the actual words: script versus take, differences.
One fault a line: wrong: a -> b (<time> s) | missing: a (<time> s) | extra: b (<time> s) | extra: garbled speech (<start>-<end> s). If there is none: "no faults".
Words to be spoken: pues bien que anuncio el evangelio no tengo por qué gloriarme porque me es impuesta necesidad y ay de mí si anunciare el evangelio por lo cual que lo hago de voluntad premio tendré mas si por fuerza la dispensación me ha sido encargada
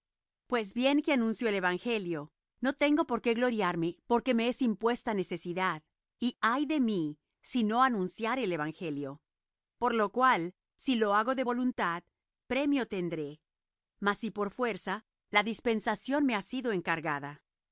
extra: no (7.6 s)
wrong: que -> si (10.8 s)